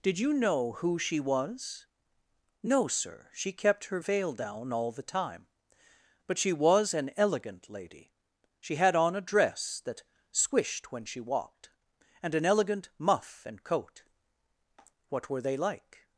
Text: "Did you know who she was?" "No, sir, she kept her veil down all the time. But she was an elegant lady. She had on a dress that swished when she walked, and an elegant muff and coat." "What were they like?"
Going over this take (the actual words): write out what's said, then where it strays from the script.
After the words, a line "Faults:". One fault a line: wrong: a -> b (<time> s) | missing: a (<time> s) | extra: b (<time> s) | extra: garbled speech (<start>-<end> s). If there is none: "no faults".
"Did you know who she was?" "No, sir, she kept her veil down all the time. But she was an elegant lady. She had on a dress that swished when she walked, and an elegant muff and coat." "What were they like?"
Faults:
no faults